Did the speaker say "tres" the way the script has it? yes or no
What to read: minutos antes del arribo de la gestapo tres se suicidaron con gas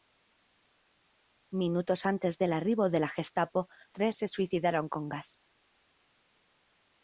yes